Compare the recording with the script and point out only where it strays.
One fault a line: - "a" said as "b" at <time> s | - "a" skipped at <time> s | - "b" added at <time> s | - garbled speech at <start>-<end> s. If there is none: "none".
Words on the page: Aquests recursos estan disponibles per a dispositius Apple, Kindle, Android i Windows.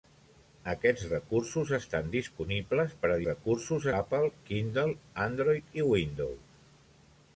- "dispositius" said as "recursos" at 3.2 s